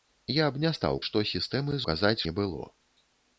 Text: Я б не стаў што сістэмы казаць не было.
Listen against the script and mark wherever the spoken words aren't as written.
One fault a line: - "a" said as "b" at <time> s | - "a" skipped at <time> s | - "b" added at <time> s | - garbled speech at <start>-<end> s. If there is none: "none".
none